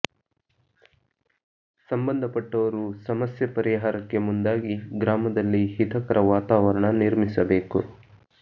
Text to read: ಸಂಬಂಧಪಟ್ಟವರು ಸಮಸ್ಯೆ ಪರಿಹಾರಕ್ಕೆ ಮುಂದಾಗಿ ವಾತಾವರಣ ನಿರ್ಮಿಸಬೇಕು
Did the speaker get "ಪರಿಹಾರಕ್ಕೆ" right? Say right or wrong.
right